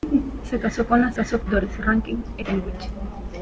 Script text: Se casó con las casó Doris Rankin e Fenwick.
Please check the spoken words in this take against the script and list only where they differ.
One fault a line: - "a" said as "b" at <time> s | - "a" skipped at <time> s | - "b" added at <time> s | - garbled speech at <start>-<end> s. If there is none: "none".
none